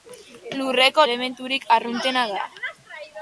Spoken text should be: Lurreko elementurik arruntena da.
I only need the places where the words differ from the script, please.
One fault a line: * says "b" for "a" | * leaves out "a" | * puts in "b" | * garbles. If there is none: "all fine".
all fine